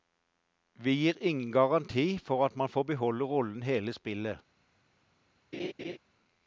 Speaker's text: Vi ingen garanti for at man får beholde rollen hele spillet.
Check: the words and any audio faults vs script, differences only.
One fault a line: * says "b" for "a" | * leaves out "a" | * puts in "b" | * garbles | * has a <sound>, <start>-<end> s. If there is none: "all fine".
* puts in "gir"
* has a laugh, 5.5-6.0 s